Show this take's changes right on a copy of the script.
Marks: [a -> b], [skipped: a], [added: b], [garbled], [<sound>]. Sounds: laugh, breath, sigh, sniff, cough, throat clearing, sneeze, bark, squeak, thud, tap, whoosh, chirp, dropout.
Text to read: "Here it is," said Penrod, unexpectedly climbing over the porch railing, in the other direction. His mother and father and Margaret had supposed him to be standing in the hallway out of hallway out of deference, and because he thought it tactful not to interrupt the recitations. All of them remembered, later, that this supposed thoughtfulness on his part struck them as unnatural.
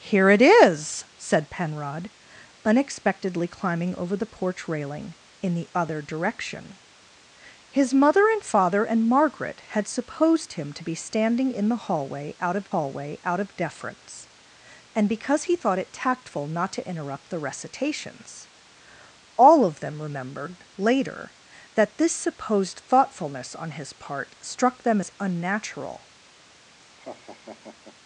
"Here it is," said Penrod, unexpectedly climbing over the porch railing, in the other direction. His mother and father and Margaret had supposed him to be standing in the hallway out of hallway out of deference, and because he thought it tactful not to interrupt the recitations. All of them remembered, later, that this supposed thoughtfulness on his part struck them as unnatural. [laugh]